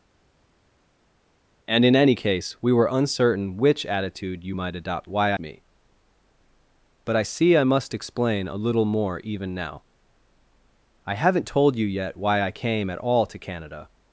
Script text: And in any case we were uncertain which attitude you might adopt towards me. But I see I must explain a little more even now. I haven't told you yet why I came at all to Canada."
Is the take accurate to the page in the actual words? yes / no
no